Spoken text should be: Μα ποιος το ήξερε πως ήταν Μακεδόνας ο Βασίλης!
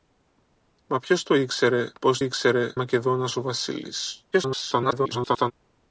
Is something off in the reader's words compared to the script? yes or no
yes